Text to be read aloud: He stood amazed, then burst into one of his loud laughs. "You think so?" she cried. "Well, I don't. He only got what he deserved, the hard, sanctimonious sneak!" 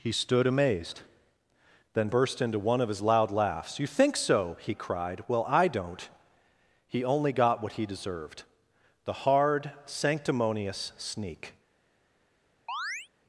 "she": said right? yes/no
no